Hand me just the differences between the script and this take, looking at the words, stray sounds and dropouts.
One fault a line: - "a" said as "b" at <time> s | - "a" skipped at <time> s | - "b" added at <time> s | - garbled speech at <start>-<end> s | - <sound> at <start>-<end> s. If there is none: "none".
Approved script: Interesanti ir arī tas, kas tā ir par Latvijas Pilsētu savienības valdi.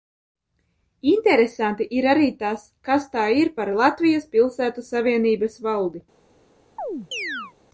- chirp at 6.8-7.5 s